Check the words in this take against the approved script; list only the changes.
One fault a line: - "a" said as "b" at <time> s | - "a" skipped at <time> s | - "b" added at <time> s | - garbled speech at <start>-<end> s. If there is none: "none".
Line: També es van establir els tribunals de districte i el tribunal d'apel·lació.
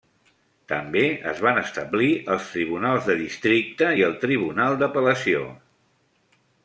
none